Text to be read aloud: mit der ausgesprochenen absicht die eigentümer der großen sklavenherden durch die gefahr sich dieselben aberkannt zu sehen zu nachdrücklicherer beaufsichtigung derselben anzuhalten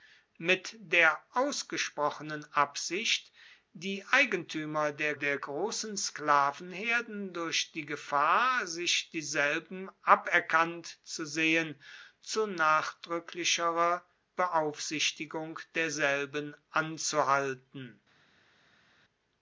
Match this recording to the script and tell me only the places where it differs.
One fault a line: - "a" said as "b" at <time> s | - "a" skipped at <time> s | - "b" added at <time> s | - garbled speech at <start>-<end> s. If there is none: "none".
- "der" added at 5.1 s